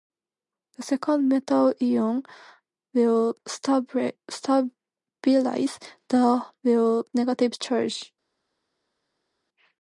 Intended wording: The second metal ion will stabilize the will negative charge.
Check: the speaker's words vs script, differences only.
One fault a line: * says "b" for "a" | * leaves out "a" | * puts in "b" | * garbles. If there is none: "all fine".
all fine